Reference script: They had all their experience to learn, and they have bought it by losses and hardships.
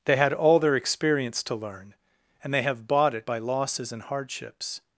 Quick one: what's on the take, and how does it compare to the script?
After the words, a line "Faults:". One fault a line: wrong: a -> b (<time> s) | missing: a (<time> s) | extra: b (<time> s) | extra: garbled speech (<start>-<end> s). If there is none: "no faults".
They had all their experience to learn, and they have bought it by losses and hardships.
Faults:
no faults